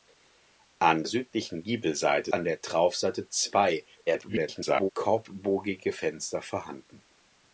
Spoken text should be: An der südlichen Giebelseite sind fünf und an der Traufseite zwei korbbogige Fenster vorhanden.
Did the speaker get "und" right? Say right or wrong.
wrong